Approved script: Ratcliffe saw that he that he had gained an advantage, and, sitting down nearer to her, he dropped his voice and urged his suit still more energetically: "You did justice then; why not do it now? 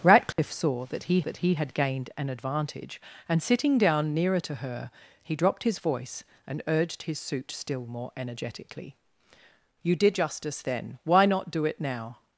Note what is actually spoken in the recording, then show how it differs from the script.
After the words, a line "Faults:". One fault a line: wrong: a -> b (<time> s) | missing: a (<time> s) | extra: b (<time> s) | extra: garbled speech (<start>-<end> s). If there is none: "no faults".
Ratcliffe saw that he that he had gained an advantage, and, sitting down nearer to her, he dropped his voice and urged his suit still more energetically: "You did justice then; why not do it now?
Faults:
no faults